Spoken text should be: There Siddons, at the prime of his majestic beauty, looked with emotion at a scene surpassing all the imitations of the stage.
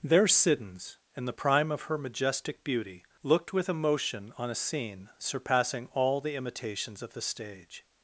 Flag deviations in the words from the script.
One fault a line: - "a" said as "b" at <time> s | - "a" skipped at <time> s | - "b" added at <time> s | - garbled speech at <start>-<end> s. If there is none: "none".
- "at" said as "in" at 1.1 s
- "his" said as "her" at 1.8 s
- "at" said as "on" at 4.4 s